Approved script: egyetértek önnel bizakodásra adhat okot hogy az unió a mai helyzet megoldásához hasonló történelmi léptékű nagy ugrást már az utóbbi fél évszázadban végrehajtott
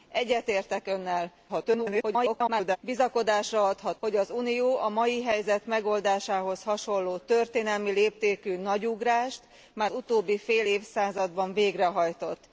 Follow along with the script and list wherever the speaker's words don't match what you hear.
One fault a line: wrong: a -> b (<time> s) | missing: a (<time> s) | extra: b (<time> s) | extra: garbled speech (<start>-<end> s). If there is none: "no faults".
extra: garbled speech (1.5-2.8 s)
missing: okot (4.0 s)
missing: az (9.9 s)